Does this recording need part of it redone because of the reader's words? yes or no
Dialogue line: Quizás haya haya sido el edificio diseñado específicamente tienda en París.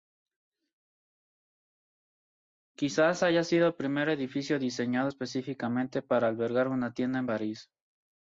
yes